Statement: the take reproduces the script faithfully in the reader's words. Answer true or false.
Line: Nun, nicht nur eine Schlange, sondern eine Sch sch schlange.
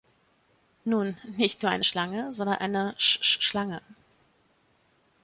true